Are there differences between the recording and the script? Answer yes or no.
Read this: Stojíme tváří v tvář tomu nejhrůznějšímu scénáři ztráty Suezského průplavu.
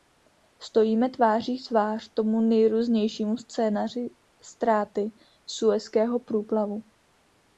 no